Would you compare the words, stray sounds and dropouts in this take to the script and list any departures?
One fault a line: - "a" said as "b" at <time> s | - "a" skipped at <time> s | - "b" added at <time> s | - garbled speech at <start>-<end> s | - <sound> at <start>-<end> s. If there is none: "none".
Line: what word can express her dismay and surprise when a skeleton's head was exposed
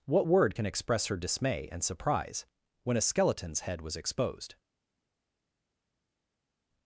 none